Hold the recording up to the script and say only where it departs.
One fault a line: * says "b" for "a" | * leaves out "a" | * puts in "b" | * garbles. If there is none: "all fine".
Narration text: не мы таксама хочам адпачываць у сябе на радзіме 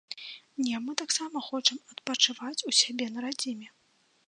all fine